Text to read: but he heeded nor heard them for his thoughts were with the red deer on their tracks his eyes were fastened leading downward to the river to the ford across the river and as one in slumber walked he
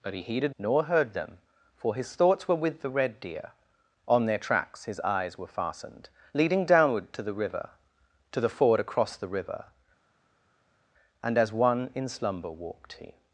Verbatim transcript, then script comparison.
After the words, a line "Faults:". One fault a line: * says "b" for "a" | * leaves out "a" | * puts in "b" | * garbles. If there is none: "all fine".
but he heeded nor heard them for his thoughts were with the red deer on their tracks his eyes were fastened leading downward to the river to the ford across the river and as one in slumber walked he
Faults:
all fine